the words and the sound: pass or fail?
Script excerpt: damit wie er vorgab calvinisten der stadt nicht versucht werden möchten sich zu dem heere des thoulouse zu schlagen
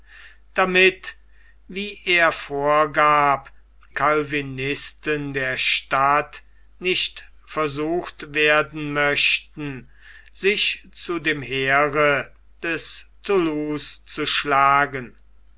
pass